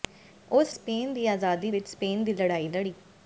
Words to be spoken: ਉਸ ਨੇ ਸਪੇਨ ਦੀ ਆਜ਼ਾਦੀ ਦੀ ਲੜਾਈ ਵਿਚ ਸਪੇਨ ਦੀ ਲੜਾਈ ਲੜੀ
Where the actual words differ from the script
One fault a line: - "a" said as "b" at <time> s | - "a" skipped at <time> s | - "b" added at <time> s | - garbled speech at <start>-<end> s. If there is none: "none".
- "ਨੇ" skipped at 0.8 s
- "ਦੀ ਲੜਾਈ" skipped at 1.7 s